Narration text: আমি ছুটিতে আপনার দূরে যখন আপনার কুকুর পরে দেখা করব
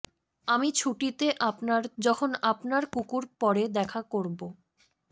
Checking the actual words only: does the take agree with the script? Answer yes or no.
no